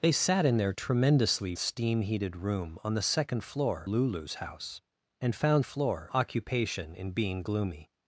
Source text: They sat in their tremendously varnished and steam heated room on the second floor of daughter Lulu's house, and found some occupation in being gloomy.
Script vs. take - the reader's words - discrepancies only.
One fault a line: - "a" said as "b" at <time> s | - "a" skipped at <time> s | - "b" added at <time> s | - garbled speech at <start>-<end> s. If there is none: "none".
- "varnished and" skipped at 1.5 s
- "of daughter" skipped at 3.9 s
- "some" said as "floor" at 5.6 s